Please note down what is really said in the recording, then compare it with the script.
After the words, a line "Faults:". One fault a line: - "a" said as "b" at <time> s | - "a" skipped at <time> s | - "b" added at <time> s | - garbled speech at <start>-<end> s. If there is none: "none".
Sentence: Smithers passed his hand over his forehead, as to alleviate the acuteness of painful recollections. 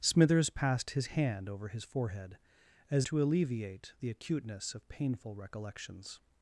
Smithers passed his hand over his forehead, as to alleviate the acuteness of painful recollections.
Faults:
none